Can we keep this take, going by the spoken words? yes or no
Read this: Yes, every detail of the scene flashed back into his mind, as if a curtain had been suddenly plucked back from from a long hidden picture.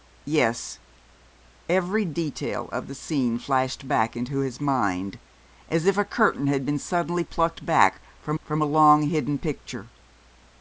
yes